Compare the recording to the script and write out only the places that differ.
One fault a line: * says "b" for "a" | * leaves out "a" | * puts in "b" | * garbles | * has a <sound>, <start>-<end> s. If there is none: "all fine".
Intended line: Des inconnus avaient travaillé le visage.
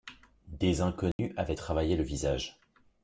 * has a dropout, 1.1-1.2 s